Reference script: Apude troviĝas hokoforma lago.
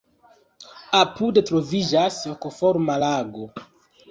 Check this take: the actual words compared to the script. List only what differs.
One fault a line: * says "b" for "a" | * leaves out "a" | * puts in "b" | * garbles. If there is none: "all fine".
all fine